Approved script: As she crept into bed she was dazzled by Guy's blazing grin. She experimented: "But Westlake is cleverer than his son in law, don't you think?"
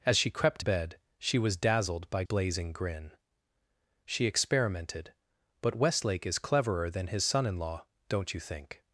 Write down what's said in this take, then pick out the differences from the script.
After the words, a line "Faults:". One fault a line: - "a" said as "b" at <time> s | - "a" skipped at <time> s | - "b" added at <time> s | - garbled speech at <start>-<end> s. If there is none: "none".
As she crept bed she was dazzled by Blazing grin. She experimented: "But Westlake is cleverer than his son in law, don't you think?"
Faults:
- "into" skipped at 0.6 s
- "Guy's" skipped at 2.2 s